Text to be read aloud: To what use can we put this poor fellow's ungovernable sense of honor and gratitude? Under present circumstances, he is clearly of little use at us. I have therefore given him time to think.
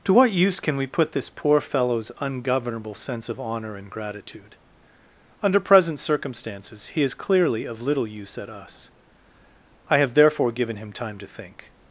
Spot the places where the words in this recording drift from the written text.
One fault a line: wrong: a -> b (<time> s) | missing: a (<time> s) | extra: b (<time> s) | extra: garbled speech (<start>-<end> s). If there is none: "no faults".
no faults